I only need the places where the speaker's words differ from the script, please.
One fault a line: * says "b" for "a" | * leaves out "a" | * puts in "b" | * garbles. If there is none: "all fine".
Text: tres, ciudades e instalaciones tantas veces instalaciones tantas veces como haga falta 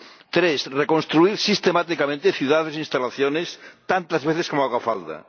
* puts in "reconstruir sistemáticamente"
* leaves out "instalaciones tantas veces"